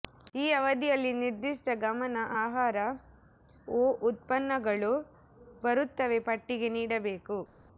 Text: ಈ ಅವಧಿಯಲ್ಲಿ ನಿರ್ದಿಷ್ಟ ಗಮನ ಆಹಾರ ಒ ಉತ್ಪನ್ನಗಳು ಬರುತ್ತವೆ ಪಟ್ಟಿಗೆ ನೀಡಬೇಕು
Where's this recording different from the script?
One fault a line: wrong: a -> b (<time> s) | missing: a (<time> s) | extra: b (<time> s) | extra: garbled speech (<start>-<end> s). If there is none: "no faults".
no faults